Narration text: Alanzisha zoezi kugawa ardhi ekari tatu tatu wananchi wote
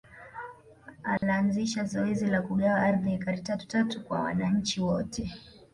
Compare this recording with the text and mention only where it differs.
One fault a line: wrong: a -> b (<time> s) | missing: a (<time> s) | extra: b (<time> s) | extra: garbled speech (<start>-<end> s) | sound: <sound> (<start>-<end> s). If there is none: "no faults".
sound: dropout (1.2-1.2 s)
extra: la (2.3 s)
extra: kwa (4.0 s)